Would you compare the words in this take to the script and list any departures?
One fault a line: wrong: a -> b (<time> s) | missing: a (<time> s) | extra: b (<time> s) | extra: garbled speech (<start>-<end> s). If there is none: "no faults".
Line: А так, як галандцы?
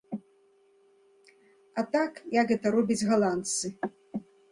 extra: гэта робяць (2.5 s)